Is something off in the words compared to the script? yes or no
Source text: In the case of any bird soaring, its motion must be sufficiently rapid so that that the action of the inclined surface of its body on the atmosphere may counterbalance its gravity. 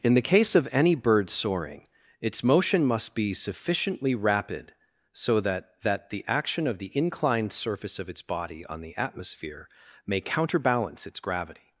no